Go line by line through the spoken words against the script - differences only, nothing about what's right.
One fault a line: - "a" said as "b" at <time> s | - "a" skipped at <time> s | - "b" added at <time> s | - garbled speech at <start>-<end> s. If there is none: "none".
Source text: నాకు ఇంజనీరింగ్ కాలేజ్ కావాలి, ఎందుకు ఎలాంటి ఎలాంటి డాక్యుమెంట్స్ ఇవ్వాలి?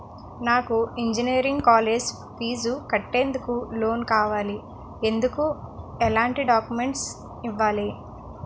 - "ఫీజు కట్టేందుకు లోన్" added at 2.4 s
- "ఎలాంటి" skipped at 6.4 s